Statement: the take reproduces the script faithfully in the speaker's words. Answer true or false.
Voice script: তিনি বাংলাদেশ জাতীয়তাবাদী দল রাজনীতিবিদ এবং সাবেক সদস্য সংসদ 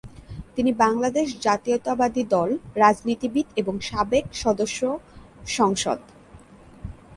true